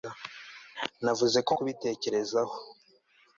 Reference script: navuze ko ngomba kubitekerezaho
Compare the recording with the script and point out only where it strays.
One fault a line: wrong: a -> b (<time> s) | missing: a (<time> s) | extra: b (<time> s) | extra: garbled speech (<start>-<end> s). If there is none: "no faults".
missing: ngomba (1.5 s)